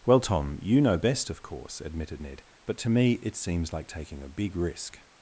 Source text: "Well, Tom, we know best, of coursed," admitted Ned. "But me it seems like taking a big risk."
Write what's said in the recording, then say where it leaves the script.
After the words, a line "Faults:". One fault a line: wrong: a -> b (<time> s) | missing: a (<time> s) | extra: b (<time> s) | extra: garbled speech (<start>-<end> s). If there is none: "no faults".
"Well, Tom, you know best, of course," admitted Ned. "But to me it seems like taking a big risk."
Faults:
wrong: we -> you (0.6 s)
wrong: coursed -> course (1.4 s)
extra: to (2.8 s)